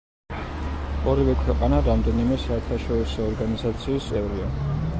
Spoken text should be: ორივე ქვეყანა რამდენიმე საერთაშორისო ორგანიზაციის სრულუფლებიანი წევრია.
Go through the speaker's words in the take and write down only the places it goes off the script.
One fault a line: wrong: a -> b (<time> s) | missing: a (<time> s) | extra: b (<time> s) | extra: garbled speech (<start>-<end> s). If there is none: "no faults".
missing: სრულუფლებიანი (4.1 s)